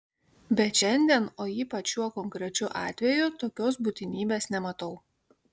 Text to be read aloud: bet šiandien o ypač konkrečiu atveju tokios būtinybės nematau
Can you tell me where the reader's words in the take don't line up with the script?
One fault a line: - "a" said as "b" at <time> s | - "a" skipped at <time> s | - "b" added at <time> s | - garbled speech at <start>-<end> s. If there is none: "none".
- "šiuo" added at 1.9 s